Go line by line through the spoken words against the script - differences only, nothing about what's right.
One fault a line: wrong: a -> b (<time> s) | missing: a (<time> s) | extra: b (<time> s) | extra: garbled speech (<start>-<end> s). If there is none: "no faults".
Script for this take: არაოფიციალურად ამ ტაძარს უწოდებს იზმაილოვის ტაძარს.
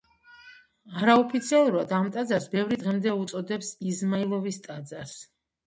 extra: ბევრი დღემდე (2.5 s)